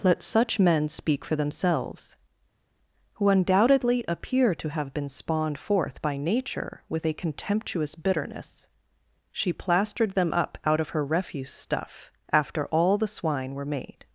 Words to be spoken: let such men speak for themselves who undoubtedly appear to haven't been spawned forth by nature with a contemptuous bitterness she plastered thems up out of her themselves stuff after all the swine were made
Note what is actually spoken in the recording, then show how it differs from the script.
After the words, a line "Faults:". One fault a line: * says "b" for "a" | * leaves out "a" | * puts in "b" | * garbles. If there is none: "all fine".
let such men speak for themselves who undoubtedly appear to have been spawned forth by nature with a contemptuous bitterness she plastered them up out of her refuse stuff after all the swine were made
Faults:
* says "have" for "haven't"
* says "them" for "thems"
* says "refuse" for "themselves"